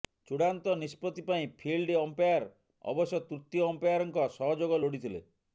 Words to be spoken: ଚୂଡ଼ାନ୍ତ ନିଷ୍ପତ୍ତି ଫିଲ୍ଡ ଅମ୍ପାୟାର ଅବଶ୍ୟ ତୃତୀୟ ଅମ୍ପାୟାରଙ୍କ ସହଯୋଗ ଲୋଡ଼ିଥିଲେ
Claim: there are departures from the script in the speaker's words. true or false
true